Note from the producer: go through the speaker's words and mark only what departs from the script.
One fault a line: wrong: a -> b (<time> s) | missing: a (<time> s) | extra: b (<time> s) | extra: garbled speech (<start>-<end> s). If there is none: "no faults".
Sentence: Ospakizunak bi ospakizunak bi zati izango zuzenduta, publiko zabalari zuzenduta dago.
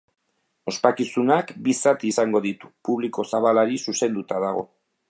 missing: ospakizunak bi (1.8 s)
wrong: zuzenduta -> ditu (2.5 s)